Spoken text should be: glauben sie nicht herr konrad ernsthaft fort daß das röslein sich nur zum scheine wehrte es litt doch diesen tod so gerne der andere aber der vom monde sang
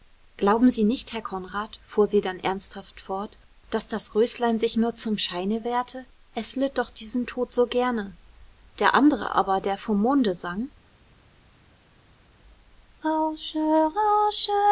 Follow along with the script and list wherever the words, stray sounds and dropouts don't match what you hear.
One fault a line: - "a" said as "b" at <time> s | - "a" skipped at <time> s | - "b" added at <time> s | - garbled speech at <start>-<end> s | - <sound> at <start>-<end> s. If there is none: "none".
- "fuhr sie dann" added at 1.9 s